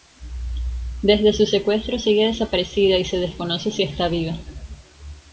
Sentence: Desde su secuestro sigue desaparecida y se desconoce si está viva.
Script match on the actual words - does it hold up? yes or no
yes